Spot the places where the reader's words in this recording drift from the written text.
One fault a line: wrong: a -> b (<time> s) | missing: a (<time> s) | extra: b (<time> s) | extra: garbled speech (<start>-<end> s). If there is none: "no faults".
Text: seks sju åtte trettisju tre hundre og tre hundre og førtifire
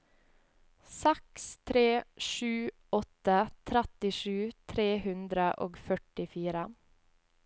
extra: tre (1.7 s)
missing: tre hundre og (5.8 s)